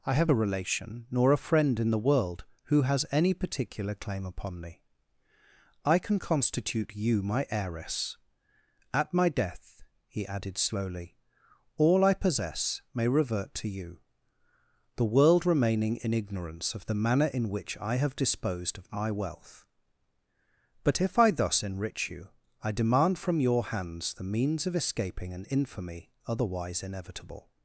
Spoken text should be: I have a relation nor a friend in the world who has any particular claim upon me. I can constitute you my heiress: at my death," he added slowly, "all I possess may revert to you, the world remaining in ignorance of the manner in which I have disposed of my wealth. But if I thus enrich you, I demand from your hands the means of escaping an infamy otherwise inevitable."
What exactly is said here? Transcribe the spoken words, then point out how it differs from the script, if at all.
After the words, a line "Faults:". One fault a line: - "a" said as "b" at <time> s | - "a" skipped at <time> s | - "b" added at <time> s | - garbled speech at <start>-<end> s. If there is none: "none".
I have a relation nor a friend in the world who has any particular claim upon me. I can constitute you my heiress: at my death," he added slowly, "all I possess may revert to you, the world remaining in ignorance of the manner in which I have disposed of my wealth. But if I thus enrich you, I demand from your hands the means of escaping an infamy otherwise inevitable."
Faults:
none